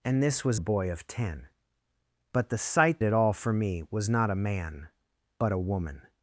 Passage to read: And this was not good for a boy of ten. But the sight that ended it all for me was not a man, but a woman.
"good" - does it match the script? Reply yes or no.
no